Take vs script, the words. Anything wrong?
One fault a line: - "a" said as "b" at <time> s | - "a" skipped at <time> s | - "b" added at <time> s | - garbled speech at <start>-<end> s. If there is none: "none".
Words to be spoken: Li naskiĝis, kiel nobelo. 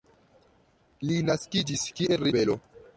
none